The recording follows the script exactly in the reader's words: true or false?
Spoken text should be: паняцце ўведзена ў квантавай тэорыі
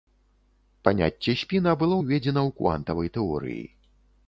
false